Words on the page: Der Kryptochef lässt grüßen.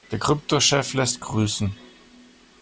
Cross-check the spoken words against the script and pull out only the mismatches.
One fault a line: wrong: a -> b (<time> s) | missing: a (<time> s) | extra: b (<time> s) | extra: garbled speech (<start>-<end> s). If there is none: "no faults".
no faults